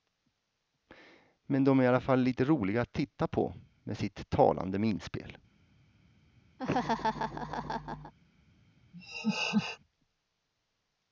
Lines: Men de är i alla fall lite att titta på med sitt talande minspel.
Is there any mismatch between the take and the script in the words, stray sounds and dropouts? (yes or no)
yes